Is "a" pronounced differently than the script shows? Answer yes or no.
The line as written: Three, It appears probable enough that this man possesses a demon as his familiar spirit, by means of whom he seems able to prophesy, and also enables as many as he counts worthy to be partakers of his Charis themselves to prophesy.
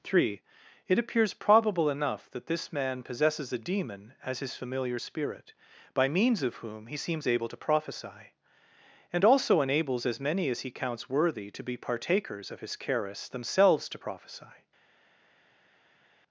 no